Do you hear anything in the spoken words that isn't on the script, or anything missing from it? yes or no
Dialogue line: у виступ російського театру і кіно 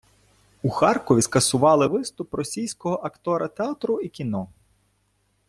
yes